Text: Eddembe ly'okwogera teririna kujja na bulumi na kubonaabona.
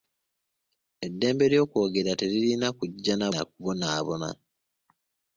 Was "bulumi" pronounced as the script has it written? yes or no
no